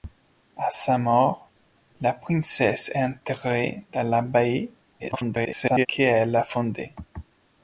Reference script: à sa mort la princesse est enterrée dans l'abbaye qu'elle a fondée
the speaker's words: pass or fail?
fail